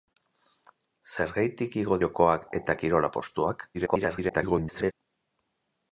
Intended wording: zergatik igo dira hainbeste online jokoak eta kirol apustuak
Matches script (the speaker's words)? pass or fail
fail